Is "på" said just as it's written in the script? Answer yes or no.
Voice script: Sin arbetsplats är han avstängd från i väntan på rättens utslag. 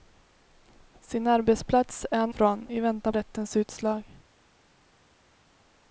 no